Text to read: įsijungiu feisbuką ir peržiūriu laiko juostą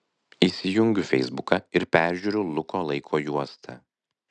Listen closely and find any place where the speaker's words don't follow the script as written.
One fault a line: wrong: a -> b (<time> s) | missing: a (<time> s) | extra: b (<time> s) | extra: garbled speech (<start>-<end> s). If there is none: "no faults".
extra: luko (2.6 s)